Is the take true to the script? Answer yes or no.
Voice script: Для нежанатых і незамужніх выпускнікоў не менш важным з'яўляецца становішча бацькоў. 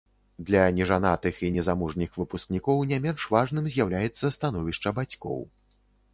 yes